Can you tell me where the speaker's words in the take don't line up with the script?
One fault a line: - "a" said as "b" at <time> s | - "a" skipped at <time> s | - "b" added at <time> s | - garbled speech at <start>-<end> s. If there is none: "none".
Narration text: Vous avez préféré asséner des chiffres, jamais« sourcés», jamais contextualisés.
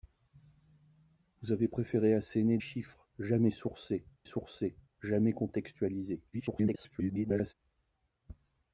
- "des" skipped at 2.6 s
- "sourcés" added at 4.2 s
- garbled speech at 6.3-7.5 s